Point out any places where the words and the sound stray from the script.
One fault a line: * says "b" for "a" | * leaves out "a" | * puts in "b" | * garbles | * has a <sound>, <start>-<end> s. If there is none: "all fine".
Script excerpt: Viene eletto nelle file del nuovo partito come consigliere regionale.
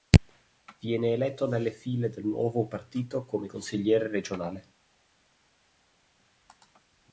all fine